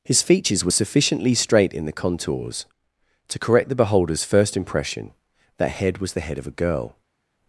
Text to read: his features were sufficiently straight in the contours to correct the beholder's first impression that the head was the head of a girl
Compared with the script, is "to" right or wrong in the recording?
right